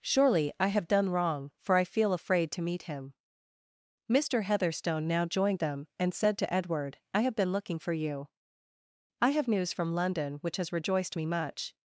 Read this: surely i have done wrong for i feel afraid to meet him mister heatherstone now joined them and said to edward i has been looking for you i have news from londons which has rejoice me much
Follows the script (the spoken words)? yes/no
no